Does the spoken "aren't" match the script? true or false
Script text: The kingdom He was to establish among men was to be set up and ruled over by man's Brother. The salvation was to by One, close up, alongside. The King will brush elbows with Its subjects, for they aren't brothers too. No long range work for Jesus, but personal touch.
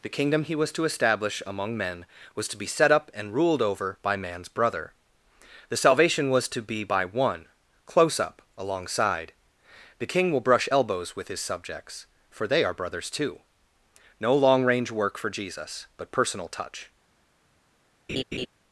false